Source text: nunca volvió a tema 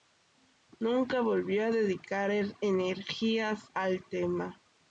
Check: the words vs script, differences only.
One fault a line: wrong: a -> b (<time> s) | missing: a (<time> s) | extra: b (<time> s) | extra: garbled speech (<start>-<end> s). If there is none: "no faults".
extra: dedicar energías al (1.7 s)